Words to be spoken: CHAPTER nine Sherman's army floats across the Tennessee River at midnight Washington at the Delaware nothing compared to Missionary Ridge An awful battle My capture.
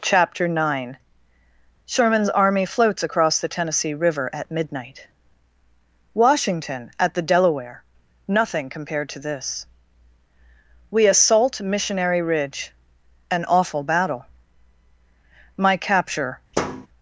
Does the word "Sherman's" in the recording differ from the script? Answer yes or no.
no